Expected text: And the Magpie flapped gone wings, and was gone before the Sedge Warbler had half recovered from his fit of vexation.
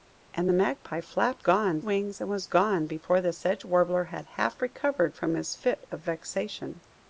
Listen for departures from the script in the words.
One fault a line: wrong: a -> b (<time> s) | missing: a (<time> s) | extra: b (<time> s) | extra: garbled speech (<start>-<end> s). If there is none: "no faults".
no faults